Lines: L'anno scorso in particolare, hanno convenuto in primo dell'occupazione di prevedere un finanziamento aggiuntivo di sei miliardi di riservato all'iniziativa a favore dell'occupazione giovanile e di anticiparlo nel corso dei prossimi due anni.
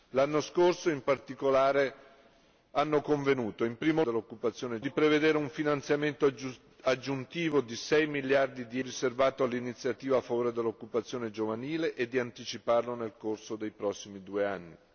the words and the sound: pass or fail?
pass